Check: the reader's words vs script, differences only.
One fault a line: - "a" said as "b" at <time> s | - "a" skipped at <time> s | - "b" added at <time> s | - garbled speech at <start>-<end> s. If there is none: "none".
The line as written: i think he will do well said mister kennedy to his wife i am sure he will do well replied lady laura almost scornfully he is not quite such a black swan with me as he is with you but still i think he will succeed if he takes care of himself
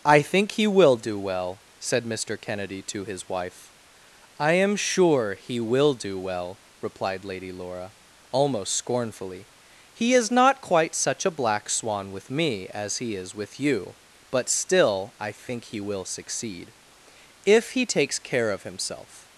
none